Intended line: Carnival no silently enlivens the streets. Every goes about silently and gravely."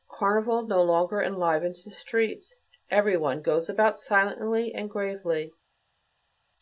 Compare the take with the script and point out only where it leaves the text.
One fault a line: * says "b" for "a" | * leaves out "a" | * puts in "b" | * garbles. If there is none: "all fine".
* says "longer" for "silently"
* puts in "one"